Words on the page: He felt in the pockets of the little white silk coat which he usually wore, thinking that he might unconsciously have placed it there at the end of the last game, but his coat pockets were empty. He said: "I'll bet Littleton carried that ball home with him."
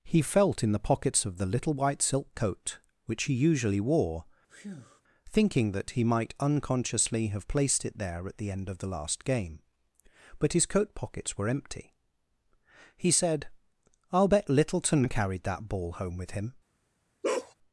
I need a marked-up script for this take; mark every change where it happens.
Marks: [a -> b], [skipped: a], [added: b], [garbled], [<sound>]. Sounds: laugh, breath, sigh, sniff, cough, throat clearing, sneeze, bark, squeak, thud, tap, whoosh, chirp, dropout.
He felt in the pockets of the little white silk coat which he usually wore, [breath] thinking that he might unconsciously have placed it there at the end of the last game, but his coat pockets were empty. He said: "I'll bet Littleton carried that ball home with him." [bark]